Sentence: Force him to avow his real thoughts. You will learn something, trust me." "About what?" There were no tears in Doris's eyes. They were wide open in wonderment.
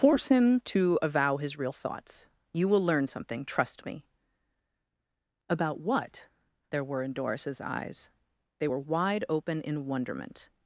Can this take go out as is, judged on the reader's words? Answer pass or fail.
fail